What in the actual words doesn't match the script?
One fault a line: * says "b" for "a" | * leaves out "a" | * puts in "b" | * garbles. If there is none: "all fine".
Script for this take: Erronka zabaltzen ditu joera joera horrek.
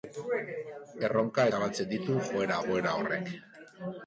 all fine